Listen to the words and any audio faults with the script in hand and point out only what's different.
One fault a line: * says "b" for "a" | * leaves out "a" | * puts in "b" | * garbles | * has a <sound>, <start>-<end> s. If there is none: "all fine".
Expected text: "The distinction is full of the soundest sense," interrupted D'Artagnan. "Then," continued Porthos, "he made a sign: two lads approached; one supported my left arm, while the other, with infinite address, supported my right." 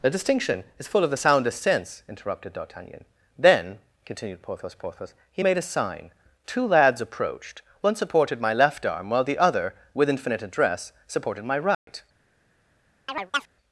* puts in "Porthos"
* has a dropout, 11.7-11.9 s
* has a chirp, 13.1-13.5 s